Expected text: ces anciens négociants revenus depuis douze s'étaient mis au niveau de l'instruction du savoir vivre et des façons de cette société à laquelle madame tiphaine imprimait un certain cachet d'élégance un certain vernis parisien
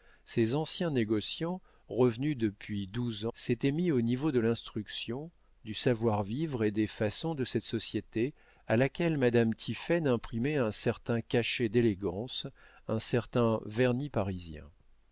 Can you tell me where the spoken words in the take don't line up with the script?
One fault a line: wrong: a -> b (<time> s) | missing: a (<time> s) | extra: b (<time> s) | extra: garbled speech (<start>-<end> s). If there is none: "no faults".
no faults